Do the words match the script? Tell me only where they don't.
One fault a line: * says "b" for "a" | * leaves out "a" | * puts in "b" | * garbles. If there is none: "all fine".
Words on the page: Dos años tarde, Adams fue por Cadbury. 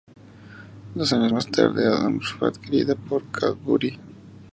* puts in "más"
* puts in "adquirida"